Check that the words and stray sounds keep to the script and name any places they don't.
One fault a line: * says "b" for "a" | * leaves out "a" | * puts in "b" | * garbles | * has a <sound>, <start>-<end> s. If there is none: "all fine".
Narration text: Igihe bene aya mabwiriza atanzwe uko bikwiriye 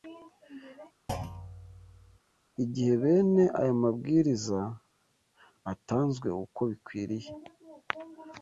* has a thud, 1.1-2.2 s